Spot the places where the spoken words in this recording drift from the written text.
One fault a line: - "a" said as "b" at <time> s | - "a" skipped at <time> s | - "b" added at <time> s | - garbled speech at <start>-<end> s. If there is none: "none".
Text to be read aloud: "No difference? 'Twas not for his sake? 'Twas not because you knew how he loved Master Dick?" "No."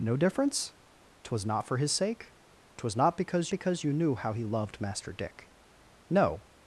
- "because" added at 3.5 s